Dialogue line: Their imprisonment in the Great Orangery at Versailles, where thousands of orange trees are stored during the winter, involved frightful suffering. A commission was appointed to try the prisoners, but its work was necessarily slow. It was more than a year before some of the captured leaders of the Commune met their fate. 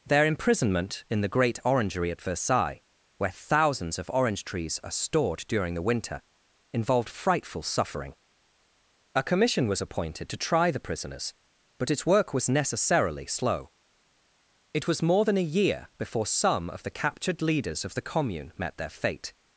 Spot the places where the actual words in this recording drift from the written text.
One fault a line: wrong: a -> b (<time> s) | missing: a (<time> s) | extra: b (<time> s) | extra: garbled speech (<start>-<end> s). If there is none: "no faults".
no faults